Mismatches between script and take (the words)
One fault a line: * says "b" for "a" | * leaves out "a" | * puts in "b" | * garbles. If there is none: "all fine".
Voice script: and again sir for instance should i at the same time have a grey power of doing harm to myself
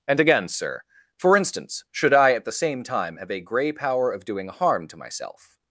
all fine